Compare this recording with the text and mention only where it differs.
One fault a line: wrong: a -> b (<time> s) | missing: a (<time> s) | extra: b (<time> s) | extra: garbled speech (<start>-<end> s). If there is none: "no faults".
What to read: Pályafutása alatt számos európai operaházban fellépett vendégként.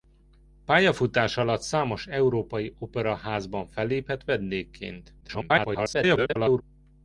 extra: garbled speech (5.2-6.6 s)